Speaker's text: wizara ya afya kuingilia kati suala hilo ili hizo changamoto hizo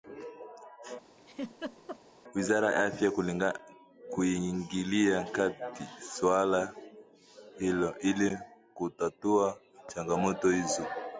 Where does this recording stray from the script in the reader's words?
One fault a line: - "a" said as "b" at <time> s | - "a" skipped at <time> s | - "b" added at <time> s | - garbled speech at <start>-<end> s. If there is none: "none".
- "hizo" said as "kutatua" at 8.7 s